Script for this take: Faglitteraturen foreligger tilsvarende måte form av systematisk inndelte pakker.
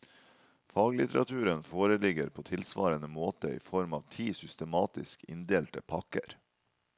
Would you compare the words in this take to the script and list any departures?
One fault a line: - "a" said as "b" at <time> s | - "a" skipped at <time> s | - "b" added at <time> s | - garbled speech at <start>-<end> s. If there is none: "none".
- "på" added at 2.3 s
- "i" added at 3.5 s
- "ti" added at 4.1 s